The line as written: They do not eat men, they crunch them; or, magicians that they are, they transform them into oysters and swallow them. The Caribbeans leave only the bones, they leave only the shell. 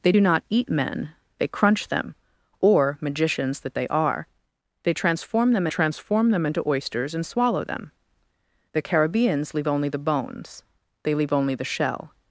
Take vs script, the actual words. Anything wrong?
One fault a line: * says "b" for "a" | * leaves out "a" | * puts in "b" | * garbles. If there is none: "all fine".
* puts in "transform them"